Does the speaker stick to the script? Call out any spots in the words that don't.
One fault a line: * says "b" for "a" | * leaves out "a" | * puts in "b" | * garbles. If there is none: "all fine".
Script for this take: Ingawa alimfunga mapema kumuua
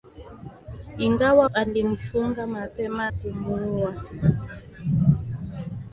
all fine